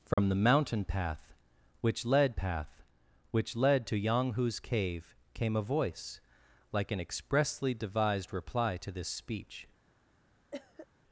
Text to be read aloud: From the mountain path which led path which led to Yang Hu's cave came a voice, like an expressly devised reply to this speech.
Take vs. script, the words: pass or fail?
pass